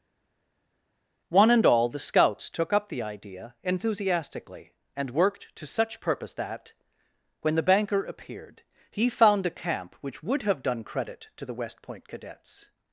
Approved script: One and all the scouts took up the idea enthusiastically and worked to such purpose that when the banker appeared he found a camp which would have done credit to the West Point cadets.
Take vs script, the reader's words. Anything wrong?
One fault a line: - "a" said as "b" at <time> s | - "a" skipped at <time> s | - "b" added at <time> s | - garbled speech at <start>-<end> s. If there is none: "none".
none